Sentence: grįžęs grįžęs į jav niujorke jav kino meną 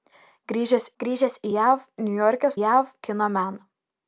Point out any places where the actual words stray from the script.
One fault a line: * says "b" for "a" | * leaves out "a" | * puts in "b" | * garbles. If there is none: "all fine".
all fine